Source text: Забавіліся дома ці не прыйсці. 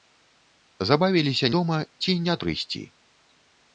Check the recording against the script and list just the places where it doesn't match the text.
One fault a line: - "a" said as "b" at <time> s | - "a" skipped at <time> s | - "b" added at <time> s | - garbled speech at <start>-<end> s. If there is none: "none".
none